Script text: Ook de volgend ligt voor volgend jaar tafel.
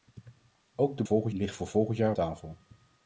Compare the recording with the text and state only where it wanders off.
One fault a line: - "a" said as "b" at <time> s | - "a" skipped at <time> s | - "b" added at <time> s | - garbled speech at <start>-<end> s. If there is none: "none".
none